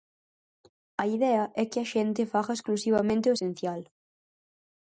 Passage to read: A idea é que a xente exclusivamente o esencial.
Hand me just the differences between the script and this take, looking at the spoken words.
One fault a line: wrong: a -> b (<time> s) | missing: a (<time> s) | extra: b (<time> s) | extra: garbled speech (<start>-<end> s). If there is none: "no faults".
extra: faga (2.3 s)